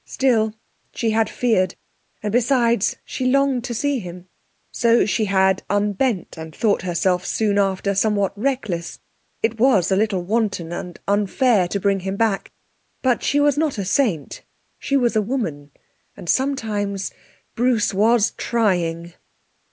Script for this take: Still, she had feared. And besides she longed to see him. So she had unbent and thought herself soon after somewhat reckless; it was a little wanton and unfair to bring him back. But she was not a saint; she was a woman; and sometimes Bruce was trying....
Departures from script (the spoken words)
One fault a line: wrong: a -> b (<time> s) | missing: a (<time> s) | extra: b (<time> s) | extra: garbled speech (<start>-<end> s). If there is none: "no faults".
no faults